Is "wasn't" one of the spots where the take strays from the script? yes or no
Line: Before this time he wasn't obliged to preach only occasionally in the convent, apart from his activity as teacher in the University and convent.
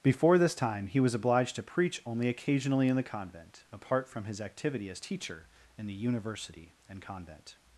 yes